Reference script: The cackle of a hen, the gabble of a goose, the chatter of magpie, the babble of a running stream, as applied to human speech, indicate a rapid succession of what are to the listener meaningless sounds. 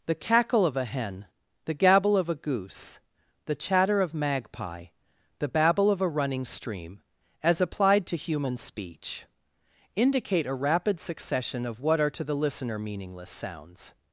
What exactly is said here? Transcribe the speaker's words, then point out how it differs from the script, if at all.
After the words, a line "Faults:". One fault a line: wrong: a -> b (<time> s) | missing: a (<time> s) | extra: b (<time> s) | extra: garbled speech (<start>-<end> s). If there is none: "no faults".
The cackle of a hen, the gabble of a goose, the chatter of magpie, the babble of a running stream, as applied to human speech, indicate a rapid succession of what are to the listener meaningless sounds.
Faults:
no faults